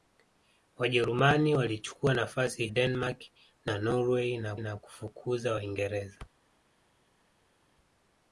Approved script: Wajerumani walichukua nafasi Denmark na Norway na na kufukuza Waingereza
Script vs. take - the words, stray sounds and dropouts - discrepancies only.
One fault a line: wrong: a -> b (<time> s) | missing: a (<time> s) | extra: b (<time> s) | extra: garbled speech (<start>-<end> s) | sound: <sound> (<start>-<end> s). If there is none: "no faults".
no faults